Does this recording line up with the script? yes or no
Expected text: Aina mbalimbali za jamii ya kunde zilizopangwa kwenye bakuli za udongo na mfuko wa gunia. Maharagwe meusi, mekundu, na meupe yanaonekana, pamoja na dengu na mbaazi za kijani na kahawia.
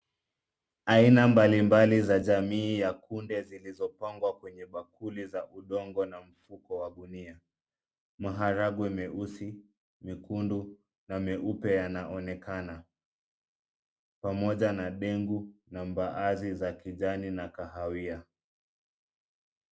yes